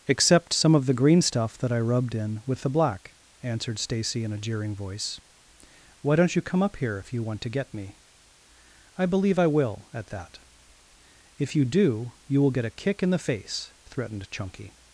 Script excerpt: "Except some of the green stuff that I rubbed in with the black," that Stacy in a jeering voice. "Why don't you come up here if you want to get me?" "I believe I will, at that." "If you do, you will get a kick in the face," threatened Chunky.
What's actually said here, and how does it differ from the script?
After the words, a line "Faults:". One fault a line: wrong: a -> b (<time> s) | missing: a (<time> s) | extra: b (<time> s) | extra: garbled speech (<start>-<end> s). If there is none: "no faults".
"Except some of the green stuff that I rubbed in with the black," answered Stacy in a jeering voice. "Why don't you come up here if you want to get me?" "I believe I will, at that." "If you do, you will get a kick in the face," threatened Chunky.
Faults:
wrong: that -> answered (3.4 s)